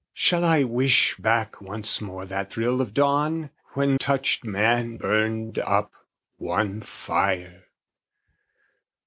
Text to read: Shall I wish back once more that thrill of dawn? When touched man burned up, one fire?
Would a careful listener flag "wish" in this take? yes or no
no